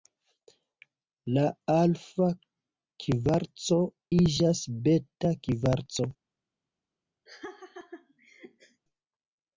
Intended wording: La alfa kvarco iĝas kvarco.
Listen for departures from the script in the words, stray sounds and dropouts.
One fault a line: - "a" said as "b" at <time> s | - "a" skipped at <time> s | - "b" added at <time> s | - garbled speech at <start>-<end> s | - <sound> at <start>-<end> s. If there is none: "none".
- "beta" added at 4.9 s
- laugh at 7.3-8.8 s